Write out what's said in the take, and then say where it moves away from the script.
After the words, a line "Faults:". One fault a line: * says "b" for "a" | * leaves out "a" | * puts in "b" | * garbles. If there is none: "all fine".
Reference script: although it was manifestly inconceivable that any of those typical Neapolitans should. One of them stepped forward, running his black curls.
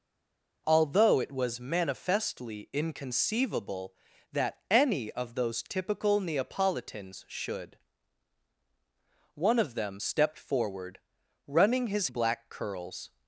although it was manifestly inconceivable that any of those typical Neapolitans should. One of them stepped forward, running his black curls.
Faults:
all fine